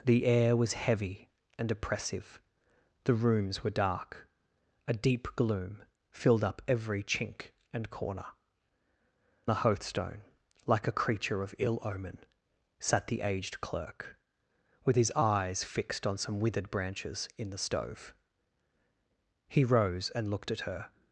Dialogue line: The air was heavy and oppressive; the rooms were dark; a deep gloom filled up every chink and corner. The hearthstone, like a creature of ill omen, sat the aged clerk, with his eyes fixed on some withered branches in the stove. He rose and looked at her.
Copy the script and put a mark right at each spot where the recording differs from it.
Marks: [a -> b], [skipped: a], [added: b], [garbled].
The air was heavy and oppressive; the rooms were dark; a deep gloom filled up every chink and corner. The hearthstone, like a creature of ill omen, sat the aged clerk, with his eyes fixed on some withered branches in the stove. He rose and looked at her.